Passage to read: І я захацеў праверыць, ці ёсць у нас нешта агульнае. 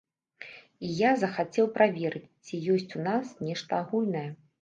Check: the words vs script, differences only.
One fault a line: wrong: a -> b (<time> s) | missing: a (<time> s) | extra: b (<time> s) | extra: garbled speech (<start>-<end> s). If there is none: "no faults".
no faults